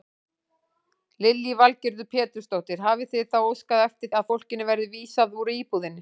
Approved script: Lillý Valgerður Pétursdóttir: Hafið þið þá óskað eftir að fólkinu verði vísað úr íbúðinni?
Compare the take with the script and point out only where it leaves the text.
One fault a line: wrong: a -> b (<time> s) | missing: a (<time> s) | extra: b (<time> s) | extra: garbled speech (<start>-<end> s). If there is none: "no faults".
no faults